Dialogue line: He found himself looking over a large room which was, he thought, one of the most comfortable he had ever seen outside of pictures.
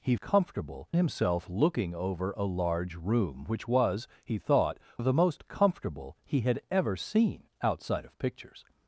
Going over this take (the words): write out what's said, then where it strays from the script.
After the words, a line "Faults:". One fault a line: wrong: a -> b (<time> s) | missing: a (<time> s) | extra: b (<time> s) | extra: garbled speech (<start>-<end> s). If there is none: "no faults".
He comfortable himself looking over a large room which was, he thought, of the most comfortable he had ever seen outside of pictures.
Faults:
wrong: found -> comfortable (0.2 s)
missing: one (4.8 s)